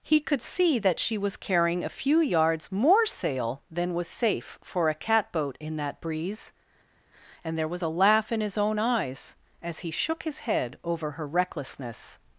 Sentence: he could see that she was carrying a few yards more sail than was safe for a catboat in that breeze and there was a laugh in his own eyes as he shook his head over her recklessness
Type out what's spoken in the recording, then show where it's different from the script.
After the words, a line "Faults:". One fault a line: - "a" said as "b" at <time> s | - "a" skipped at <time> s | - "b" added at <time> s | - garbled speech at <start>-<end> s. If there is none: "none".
he could see that she was carrying a few yards more sail than was safe for a catboat in that breeze and there was a laugh in his own eyes as he shook his head over her recklessness
Faults:
none